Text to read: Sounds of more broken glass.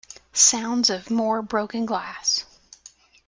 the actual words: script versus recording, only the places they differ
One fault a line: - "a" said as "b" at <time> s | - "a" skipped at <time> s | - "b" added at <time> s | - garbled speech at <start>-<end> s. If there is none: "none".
none